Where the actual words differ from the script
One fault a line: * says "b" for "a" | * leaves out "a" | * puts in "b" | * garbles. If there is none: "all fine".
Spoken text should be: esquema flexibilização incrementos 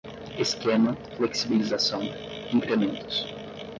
all fine